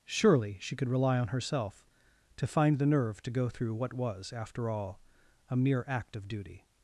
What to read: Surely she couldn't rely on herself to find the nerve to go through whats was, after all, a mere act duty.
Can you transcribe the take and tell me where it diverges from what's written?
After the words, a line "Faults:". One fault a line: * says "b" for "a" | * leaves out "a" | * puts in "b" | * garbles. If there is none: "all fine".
Surely she could rely on herself to find the nerve to go through what was, after all, a mere act of duty.
Faults:
* says "could" for "couldn't"
* says "what" for "whats"
* puts in "of"